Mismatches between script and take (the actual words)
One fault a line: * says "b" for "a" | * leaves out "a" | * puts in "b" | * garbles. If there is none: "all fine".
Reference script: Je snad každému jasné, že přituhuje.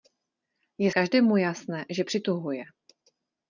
* leaves out "snad"